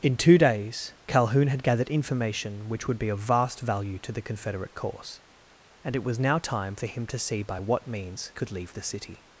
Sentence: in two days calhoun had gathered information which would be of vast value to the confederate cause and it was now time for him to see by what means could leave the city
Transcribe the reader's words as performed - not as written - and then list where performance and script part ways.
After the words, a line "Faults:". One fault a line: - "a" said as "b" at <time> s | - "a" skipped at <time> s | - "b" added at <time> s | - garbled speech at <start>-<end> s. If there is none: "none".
in two days calhoun had gathered information which would be of vast value to the confederate cause and it was now time for him to see by what means could leave the city
Faults:
none